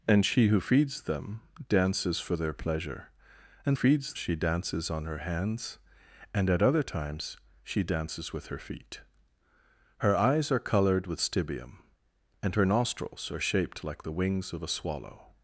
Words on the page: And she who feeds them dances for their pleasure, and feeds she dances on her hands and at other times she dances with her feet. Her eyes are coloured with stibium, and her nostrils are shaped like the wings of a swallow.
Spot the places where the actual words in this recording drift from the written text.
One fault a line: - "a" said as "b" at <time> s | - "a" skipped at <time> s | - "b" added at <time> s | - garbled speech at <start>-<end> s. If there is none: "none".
none